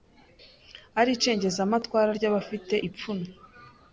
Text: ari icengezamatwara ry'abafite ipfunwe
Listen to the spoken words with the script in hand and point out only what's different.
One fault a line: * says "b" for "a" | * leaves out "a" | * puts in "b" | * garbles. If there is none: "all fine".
all fine